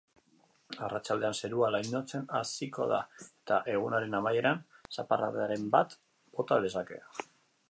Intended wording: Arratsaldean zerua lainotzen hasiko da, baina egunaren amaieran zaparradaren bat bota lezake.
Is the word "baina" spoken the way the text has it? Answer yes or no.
no